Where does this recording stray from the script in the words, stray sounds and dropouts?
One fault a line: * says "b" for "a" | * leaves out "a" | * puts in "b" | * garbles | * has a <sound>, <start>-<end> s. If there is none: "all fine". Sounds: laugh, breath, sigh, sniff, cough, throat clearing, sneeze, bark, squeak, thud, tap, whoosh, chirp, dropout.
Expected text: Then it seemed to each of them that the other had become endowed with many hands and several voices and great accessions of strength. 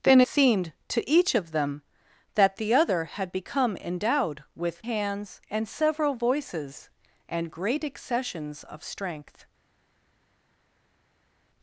* leaves out "it"
* leaves out "many"